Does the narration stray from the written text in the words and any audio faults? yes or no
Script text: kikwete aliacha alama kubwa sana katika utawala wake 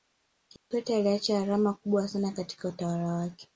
yes